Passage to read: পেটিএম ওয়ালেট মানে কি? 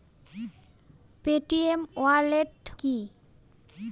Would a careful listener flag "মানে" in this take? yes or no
yes